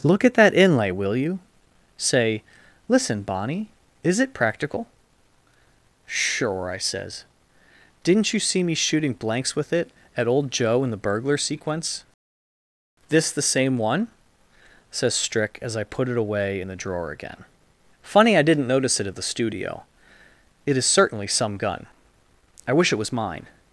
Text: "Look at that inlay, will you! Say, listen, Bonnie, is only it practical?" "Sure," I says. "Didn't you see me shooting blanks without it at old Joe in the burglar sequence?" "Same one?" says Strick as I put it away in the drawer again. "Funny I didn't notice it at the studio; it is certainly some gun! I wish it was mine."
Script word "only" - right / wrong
wrong